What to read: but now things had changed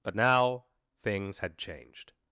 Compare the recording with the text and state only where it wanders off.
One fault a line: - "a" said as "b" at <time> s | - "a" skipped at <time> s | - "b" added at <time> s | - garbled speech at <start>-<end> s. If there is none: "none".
none